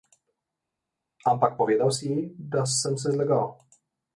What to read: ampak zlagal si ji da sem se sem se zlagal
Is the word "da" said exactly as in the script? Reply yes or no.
yes